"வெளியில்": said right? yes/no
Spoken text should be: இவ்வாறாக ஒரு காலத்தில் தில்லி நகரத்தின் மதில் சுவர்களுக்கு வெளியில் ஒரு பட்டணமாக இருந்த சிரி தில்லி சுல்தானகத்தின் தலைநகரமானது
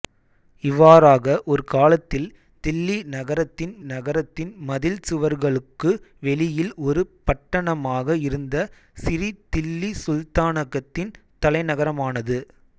yes